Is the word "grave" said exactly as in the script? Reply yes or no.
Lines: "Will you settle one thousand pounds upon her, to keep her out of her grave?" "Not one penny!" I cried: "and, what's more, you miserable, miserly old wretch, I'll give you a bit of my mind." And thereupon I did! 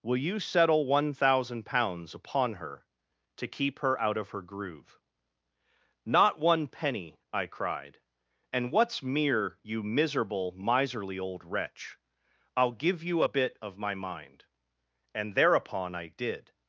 no